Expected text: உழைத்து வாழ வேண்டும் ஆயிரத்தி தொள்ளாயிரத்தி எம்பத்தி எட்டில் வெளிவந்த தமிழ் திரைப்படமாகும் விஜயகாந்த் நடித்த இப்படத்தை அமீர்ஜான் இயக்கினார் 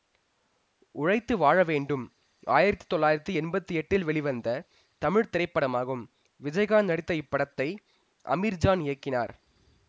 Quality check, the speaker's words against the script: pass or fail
pass